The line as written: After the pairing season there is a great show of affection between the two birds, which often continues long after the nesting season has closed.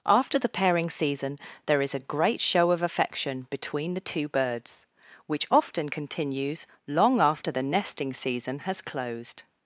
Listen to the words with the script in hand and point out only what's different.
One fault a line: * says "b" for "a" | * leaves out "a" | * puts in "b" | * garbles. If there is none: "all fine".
all fine